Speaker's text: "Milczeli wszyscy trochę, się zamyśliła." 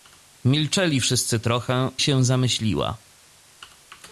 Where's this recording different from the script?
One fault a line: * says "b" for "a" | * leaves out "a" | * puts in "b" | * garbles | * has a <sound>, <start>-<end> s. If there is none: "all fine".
all fine